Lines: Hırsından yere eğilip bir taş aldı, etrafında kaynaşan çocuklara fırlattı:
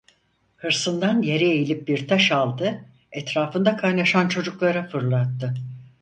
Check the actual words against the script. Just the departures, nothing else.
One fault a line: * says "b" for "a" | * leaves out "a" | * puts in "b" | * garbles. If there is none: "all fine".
all fine